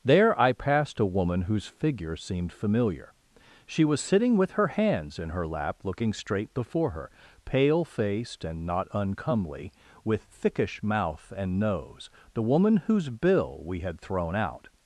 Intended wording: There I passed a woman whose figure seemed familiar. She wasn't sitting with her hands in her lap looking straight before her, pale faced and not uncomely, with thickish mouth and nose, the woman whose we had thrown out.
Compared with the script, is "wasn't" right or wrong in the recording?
wrong